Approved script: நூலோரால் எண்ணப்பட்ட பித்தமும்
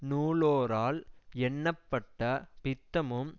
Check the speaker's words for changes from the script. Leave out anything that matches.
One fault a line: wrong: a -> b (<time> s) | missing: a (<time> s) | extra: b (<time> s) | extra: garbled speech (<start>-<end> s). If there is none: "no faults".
no faults